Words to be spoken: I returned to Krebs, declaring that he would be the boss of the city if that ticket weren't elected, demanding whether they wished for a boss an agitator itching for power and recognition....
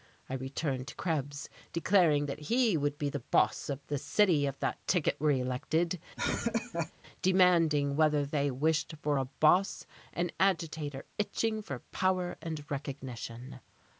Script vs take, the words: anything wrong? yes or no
yes